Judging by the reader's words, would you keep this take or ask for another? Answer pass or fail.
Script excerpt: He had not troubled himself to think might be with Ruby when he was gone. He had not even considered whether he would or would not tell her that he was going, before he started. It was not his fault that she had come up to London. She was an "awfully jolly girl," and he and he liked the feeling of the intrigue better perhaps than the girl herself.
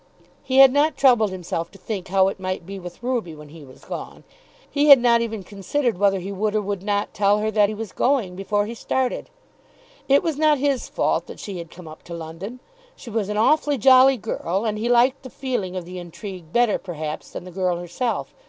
fail